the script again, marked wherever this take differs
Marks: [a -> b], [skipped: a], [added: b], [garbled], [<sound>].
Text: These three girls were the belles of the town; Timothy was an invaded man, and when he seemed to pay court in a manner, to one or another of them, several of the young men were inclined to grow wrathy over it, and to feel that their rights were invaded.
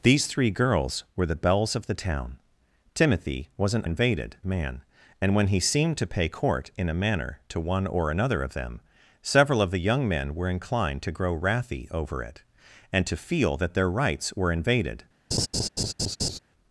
These three girls were the belles of the town; Timothy was an invaded man, and when he seemed to pay court in a manner, to one or another of them, several of the young men were inclined to grow wrathy over it, and to feel that their rights were invaded. [laugh]